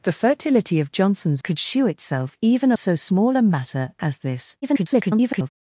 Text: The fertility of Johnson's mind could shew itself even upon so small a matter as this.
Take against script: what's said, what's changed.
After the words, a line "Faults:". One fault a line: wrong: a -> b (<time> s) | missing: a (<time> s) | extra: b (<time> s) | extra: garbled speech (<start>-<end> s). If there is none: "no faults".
The fertility of Johnson's could shew itself even so small a matter as this. [garbled]
Faults:
missing: mind (1.4 s)
missing: upon (2.7 s)
extra: garbled speech (4.6-5.5 s)